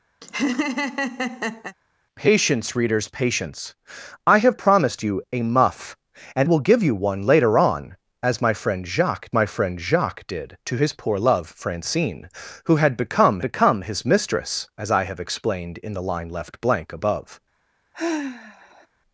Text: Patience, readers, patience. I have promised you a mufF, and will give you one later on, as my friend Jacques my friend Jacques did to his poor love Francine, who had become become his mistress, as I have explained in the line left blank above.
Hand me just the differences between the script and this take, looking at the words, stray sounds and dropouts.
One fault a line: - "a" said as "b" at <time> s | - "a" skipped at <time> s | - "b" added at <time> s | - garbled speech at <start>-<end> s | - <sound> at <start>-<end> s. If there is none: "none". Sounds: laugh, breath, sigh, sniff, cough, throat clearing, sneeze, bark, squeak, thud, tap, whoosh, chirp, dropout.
- laugh at 0.2-1.8 s
- sigh at 17.9-18.9 s